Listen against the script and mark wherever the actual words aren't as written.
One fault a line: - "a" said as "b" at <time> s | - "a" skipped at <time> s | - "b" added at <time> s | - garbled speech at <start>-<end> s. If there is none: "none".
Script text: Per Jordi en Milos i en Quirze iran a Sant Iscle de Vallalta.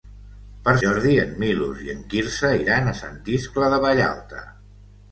none